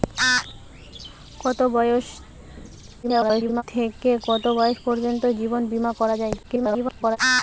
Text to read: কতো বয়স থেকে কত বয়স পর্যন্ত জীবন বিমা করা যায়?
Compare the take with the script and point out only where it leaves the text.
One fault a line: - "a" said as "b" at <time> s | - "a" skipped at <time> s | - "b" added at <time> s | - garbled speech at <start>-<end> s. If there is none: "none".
- garbled speech at 3.0-3.6 s
- garbled speech at 6.4-7.2 s